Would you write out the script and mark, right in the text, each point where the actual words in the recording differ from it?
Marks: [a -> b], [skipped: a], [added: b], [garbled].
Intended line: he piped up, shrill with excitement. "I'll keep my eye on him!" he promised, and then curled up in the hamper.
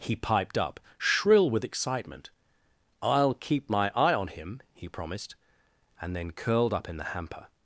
he piped up, shrill with excitement. "I'll keep my eye on him!" he promised, and then curled up in the hamper.